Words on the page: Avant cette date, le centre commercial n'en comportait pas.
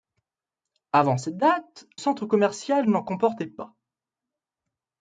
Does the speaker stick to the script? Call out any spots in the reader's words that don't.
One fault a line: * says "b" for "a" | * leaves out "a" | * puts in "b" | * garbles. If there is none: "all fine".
* leaves out "le"